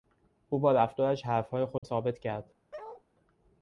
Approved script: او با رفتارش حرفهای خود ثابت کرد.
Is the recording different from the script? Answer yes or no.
no